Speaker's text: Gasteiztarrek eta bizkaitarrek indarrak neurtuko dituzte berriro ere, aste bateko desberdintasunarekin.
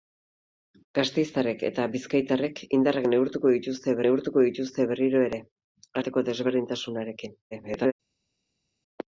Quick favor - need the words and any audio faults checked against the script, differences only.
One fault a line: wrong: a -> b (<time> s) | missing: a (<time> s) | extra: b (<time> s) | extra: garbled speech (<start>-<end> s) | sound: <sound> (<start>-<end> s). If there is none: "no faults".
extra: neurtuko dituzte (4.1 s)
missing: aste (5.5 s)
extra: garbled speech (7.5-7.9 s)